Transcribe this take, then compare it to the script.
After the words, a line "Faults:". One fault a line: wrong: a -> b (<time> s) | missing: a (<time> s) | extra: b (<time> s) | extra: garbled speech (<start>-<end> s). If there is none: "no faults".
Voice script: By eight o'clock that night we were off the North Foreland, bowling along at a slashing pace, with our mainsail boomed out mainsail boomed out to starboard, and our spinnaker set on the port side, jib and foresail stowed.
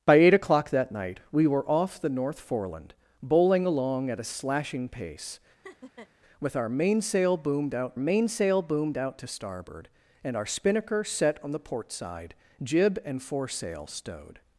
By eight o'clock that night we were off the North Foreland, bowling along at a slashing pace, with our mainsail boomed out mainsail boomed out to starboard, and our spinnaker set on the port side, jib and foresail stowed.
Faults:
no faults